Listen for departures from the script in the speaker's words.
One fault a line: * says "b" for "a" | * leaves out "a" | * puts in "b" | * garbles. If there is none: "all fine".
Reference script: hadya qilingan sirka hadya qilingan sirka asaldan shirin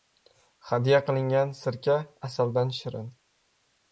* leaves out "hadya qilingan sirka"